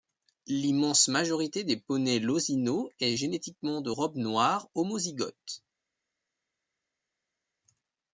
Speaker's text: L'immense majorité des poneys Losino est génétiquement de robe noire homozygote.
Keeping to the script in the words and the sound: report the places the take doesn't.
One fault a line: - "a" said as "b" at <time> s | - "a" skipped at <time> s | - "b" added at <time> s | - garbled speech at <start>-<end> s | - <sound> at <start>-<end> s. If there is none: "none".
none